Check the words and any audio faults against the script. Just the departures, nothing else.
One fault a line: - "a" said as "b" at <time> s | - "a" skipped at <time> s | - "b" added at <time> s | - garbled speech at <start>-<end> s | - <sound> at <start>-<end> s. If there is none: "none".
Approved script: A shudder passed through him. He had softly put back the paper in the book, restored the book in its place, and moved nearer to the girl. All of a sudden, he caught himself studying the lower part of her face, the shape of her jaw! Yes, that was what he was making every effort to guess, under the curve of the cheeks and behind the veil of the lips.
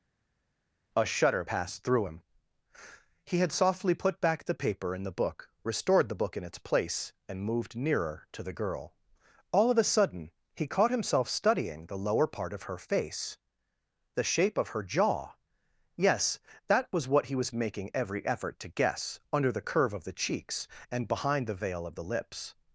none